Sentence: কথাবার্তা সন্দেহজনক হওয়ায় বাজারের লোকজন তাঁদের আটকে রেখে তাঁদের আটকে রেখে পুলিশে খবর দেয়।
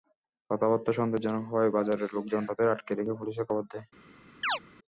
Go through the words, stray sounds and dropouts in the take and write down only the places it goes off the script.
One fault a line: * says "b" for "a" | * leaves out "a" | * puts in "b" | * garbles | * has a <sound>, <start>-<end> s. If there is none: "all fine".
* leaves out "তাঁদের আটকে রেখে"
* has a chirp, 4.4-4.6 s